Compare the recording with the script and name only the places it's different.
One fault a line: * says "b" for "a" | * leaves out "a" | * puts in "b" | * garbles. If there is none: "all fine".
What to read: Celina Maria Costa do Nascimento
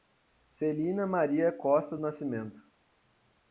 * leaves out "do"